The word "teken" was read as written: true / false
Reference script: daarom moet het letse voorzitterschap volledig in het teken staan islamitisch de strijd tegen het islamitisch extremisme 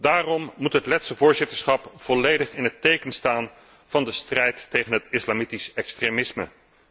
true